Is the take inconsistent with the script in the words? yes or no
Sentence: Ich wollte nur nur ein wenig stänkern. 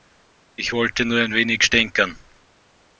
yes